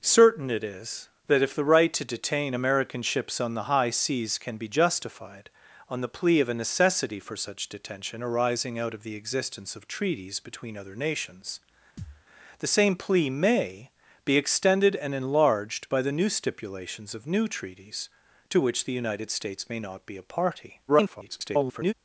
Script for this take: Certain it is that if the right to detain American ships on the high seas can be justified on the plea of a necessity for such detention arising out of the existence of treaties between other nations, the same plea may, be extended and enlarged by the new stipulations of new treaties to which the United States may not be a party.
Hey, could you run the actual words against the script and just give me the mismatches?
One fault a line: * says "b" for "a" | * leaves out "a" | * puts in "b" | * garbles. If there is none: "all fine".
* garbles